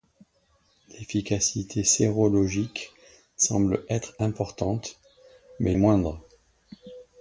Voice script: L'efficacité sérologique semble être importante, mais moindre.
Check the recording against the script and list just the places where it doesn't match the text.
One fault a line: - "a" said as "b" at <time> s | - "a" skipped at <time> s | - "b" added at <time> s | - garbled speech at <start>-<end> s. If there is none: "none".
none